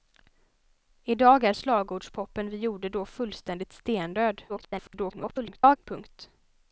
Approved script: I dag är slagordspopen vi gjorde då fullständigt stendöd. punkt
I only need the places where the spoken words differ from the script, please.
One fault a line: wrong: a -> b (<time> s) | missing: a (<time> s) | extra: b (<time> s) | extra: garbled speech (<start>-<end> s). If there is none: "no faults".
extra: garbled speech (4.5-5.8 s)